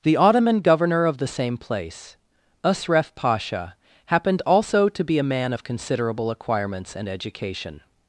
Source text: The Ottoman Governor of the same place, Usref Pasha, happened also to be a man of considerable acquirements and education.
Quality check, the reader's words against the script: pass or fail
pass